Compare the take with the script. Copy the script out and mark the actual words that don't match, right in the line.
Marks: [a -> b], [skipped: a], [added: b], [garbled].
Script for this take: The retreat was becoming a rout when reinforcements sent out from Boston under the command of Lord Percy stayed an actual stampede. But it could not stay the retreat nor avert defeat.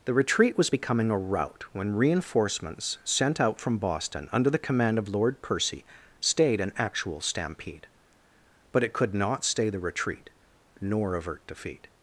The retreat was becoming a rout when reinforcements sent out from Boston under the command of Lord Percy stayed an actual stampede. But it could not stay the retreat nor avert defeat.